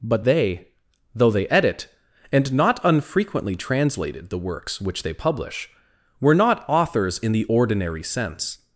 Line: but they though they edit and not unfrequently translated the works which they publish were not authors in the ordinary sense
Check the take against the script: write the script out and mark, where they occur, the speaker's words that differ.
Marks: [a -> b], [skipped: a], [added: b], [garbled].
but they though they edit and not unfrequently translated the works which they publish were not authors in the ordinary sense